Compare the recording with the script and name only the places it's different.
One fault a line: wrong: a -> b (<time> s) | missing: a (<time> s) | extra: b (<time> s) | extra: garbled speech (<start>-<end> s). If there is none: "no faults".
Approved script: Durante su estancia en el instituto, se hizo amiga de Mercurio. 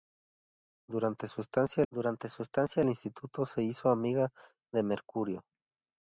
extra: durante su estancia (1.9 s)